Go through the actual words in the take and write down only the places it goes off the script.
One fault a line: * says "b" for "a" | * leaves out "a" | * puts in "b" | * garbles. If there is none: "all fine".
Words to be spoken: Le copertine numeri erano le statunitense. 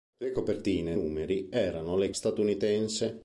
all fine